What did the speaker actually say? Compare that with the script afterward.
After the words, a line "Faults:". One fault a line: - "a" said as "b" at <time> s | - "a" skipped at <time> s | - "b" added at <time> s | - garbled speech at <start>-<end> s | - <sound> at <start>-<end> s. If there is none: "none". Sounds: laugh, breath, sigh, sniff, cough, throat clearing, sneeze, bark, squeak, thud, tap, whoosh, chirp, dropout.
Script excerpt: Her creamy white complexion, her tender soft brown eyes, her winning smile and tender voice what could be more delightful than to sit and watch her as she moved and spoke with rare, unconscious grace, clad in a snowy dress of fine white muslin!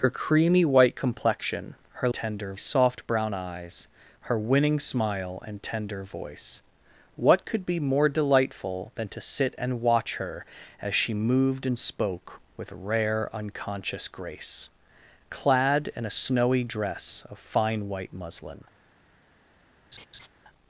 Her creamy white complexion, her tender soft brown eyes, her winning smile and tender voice what could be more delightful than to sit and watch her as she moved and spoke with rare, unconscious grace, clad in a snowy dress of fine white muslin!
Faults:
- laugh at 19.9-20.3 s